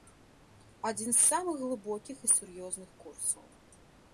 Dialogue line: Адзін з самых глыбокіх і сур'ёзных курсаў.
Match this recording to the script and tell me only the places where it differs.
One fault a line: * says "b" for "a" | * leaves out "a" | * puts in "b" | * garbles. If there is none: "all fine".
all fine